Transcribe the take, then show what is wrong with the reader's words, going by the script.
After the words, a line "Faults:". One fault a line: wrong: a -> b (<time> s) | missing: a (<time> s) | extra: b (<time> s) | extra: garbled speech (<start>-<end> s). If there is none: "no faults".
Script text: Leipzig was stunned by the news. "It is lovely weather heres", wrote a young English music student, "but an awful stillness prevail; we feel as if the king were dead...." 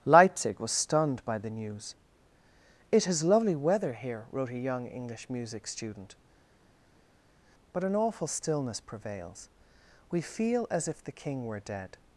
Leipzig was stunned by the news. "It is lovely weather here", wrote a young English music student, "but an awful stillness prevails; we feel as if the king were dead...."
Faults:
wrong: heres -> here (3.9 s)
wrong: prevail -> prevails (8.8 s)